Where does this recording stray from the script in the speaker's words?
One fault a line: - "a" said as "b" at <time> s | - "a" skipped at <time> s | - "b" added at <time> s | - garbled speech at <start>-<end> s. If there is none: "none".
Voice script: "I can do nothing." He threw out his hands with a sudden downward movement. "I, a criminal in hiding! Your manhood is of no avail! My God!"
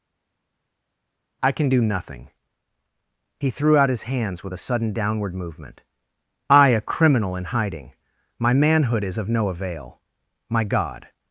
- "Your" said as "My" at 8.4 s